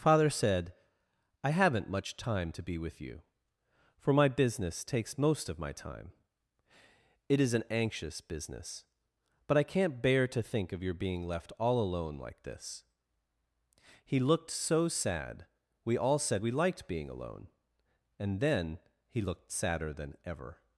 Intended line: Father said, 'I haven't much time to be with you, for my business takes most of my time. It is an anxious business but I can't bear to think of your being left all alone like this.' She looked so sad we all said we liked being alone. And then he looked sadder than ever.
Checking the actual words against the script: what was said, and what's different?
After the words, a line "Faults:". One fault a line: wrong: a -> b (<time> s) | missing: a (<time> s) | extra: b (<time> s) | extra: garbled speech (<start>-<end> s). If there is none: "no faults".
Father said, 'I haven't much time to be with you, for my business takes most of my time. It is an anxious business but I can't bear to think of your being left all alone like this.' He looked so sad we all said we liked being alone. And then he looked sadder than ever.
Faults:
wrong: She -> He (14.0 s)